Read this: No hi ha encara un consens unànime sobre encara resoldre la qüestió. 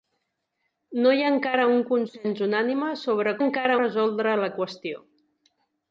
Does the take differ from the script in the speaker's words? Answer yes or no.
no